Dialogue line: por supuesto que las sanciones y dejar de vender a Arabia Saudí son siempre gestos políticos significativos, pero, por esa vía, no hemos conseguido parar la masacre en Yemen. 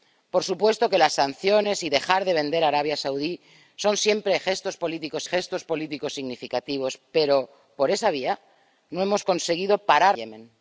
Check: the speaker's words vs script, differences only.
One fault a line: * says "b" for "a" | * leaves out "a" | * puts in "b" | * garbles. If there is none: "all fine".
* puts in "gestos políticos"
* leaves out "la masacre en"